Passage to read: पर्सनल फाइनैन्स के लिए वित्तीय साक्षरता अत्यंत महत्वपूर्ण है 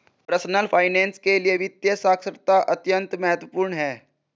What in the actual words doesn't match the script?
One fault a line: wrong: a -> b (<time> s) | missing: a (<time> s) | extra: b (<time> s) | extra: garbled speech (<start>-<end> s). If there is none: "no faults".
no faults